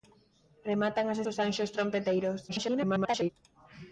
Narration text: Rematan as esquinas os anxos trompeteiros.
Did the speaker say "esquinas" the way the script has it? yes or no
no